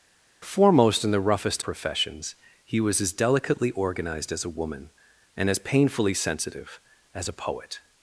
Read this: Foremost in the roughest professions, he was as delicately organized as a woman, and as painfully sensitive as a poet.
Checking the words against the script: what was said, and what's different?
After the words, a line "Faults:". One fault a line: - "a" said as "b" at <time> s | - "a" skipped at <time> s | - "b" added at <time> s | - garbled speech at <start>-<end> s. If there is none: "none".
Foremost in the roughest professions, he was as delicately organized as a woman, and as painfully sensitive as a poet.
Faults:
none